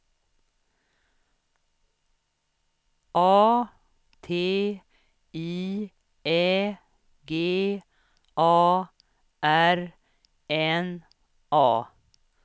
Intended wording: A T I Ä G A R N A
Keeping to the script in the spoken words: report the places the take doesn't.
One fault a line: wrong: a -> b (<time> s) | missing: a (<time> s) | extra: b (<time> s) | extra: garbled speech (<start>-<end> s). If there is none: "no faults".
no faults